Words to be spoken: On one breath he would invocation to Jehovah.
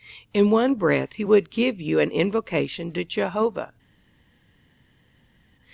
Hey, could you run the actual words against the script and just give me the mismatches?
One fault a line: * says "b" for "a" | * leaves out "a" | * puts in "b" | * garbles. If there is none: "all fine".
* says "In" for "On"
* puts in "give you an"